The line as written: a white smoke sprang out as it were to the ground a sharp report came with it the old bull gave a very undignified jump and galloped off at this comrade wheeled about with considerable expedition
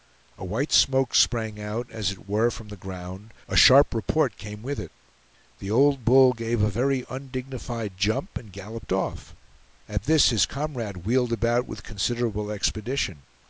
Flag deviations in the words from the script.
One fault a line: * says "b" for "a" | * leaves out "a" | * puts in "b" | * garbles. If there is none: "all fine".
* says "from" for "to"
* puts in "his"